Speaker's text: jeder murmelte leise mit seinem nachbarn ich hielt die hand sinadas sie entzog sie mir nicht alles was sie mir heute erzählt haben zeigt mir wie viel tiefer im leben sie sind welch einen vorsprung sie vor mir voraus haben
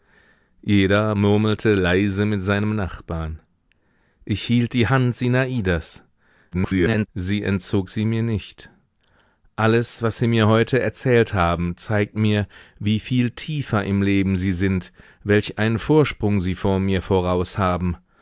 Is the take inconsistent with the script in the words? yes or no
yes